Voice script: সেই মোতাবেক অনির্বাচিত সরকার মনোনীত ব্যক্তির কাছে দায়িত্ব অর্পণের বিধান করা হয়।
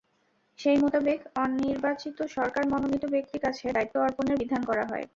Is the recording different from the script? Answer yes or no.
no